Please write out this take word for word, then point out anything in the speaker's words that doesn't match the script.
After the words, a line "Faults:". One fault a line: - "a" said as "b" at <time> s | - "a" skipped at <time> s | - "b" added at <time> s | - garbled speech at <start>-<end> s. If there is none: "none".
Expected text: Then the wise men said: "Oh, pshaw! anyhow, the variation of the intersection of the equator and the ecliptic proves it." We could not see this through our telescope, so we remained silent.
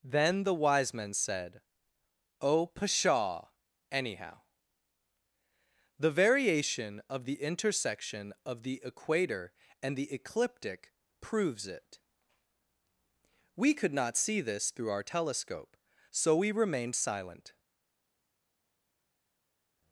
Then the wise men said: "Oh, pshaw! anyhow, the variation of the intersection of the equator and the ecliptic proves it." We could not see this through our telescope, so we remained silent.
Faults:
none